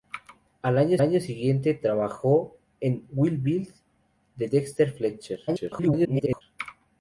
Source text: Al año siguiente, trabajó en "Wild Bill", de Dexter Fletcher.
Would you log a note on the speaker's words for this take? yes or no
yes